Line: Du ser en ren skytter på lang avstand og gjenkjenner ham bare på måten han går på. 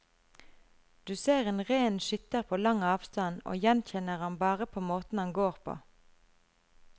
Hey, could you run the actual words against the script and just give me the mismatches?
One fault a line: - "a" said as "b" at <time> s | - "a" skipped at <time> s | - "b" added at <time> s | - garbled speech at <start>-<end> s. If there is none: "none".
none